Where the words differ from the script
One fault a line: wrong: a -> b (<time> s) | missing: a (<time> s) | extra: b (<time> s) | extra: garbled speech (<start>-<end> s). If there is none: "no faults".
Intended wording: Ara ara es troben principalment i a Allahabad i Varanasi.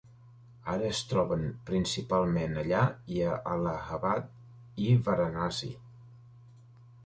missing: ara (0.9 s)
extra: allà (2.6 s)